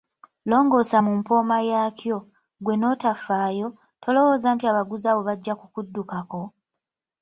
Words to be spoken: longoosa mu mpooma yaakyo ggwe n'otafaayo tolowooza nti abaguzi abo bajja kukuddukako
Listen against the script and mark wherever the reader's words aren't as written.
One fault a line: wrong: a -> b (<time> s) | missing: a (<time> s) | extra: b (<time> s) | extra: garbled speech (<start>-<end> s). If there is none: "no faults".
no faults